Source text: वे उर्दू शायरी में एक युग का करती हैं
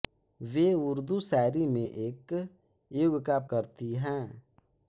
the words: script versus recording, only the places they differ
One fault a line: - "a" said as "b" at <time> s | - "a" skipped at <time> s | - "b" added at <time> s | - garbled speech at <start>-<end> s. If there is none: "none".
none